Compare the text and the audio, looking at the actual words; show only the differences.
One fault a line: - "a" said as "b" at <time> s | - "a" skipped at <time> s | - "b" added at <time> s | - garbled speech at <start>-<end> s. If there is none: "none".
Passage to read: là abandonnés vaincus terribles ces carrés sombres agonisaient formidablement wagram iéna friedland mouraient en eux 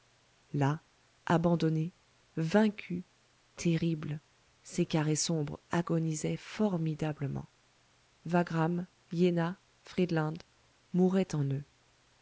none